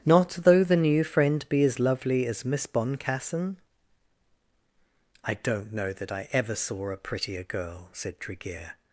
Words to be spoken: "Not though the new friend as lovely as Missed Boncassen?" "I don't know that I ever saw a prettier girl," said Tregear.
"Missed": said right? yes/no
no